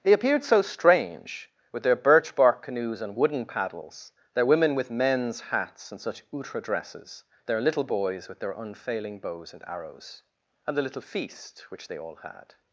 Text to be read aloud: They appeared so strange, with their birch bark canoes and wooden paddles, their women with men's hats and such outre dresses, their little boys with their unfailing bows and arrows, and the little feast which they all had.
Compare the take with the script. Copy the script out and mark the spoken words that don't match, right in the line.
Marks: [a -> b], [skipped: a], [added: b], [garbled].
They appeared so strange, with their birch bark canoes and wooden paddles, their women with men's hats and such outre dresses, their little boys with their unfailing bows and arrows, and the little feast which they all had.